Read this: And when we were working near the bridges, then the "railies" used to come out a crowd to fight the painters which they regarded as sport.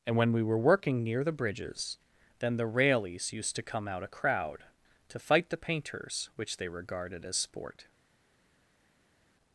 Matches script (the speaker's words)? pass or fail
pass